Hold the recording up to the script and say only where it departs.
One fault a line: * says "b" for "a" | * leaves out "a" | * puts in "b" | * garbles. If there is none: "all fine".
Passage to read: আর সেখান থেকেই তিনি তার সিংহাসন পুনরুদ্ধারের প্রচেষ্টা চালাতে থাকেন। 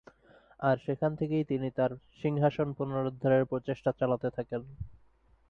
all fine